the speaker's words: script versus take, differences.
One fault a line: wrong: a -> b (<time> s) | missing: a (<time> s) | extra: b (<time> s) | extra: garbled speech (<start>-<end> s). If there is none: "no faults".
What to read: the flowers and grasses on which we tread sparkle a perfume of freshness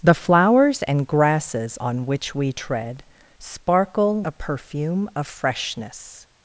no faults